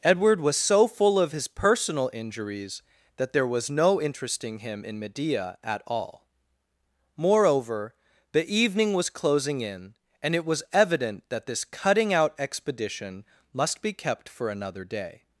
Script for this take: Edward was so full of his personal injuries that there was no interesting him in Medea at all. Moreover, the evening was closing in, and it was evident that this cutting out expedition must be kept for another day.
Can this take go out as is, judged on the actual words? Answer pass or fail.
pass